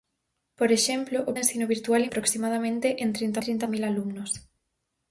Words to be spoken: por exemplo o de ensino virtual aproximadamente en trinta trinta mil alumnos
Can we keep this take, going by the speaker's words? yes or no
yes